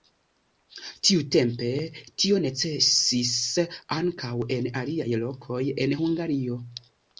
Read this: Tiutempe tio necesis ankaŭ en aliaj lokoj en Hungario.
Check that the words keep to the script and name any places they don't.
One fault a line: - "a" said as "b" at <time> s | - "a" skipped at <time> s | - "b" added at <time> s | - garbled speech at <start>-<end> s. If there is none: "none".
none